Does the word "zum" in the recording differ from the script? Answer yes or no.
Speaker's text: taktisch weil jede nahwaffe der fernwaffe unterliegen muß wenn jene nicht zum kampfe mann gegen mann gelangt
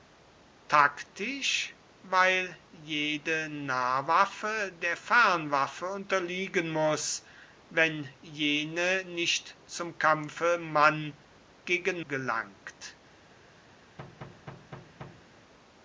no